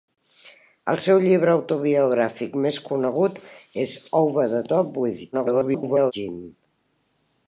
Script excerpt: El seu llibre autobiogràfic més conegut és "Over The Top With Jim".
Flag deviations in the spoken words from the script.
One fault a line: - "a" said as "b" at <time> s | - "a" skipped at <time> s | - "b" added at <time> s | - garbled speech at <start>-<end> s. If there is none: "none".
- garbled speech at 5.3-6.1 s